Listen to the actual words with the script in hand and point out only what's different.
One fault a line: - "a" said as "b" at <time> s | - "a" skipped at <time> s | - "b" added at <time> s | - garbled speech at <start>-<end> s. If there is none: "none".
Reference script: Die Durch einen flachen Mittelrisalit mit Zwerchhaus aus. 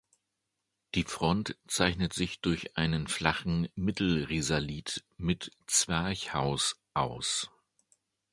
- "Front zeichnet sich" added at 1.0 s